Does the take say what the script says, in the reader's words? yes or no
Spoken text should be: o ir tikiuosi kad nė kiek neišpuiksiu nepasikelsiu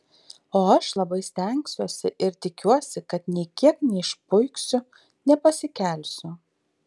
no